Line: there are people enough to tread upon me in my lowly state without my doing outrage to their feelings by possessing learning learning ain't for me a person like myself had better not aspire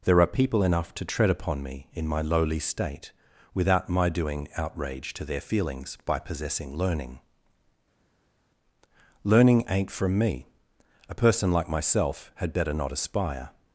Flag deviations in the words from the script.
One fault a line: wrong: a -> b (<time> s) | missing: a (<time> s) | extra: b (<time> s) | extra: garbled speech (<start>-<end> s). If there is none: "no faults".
wrong: for -> from (9.9 s)